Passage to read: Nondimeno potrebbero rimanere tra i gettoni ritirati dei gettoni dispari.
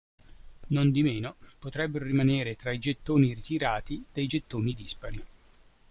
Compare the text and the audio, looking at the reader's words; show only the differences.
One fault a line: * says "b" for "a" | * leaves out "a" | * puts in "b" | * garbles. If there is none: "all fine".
all fine